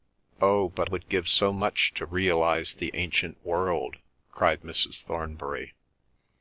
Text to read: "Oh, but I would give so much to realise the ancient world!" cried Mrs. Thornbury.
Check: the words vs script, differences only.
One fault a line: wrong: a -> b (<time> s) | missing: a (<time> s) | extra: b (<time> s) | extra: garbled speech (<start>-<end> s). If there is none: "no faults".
missing: I (0.9 s)